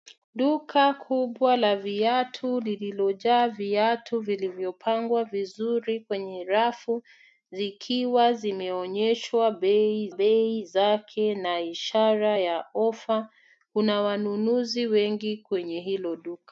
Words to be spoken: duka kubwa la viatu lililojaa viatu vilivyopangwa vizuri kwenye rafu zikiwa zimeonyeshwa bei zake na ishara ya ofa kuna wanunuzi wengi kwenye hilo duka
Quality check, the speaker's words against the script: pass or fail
fail